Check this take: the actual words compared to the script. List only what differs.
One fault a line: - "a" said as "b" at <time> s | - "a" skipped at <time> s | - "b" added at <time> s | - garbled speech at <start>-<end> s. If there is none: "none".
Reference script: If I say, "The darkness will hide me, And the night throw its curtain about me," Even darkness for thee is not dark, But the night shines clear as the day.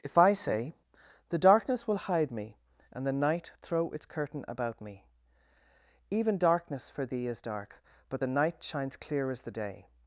- "not" skipped at 7.4 s